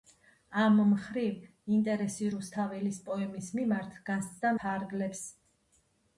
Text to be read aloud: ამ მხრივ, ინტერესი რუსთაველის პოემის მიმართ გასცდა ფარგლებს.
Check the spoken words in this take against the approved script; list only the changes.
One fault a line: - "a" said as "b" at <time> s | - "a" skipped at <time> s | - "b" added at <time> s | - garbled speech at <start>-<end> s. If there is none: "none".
none